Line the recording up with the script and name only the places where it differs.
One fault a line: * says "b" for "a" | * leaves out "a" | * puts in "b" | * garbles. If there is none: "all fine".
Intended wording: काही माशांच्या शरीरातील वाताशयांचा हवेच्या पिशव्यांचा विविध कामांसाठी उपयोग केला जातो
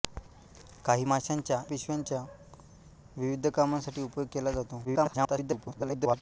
* leaves out "शरीरातील वाताशयांचा हवेच्या"
* garbles